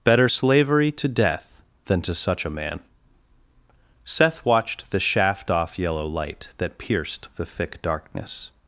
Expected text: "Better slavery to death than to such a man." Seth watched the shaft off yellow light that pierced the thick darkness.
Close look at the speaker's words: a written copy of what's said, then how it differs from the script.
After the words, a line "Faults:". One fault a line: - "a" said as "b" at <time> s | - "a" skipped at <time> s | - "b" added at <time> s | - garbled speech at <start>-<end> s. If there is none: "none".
"Better slavery to death than to such a man." Seth watched the shaft off yellow light that pierced the thick darkness.
Faults:
none